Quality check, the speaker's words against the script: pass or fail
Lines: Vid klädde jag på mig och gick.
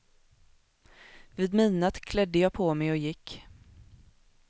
fail